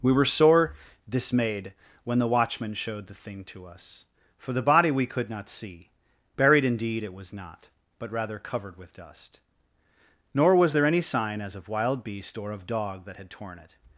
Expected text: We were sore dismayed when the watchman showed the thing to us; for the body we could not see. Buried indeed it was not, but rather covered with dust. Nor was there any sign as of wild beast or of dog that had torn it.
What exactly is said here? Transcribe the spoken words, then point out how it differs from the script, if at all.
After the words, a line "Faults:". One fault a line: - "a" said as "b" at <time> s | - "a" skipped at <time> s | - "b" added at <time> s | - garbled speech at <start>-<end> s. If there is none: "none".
We were sore dismayed when the watchman showed the thing to us; for the body we could not see. Buried indeed it was not, but rather covered with dust. Nor was there any sign as of wild beast or of dog that had torn it.
Faults:
none